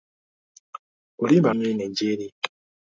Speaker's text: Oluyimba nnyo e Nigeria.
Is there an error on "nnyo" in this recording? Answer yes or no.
no